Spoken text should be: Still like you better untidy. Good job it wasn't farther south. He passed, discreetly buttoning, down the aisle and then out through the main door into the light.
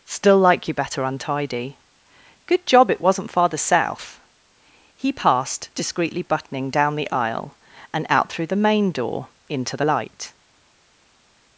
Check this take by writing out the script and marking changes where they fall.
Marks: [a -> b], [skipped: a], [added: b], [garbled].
Still like you better untidy. Good job it wasn't farther south. He passed, discreetly buttoning, down the aisle and [skipped: then] out through the main door into the light.